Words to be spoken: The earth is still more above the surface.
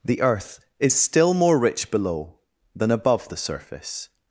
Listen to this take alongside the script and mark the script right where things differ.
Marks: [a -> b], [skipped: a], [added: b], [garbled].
The earth is still more [added: rich below than] above the surface.